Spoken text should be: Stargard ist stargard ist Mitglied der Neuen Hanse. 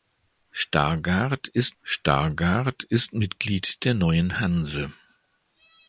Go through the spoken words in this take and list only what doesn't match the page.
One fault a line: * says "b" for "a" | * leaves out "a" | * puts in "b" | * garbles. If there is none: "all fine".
all fine